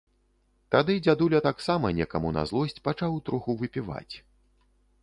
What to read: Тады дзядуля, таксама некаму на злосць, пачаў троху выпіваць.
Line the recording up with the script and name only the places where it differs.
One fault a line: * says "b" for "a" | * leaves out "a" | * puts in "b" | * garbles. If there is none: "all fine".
all fine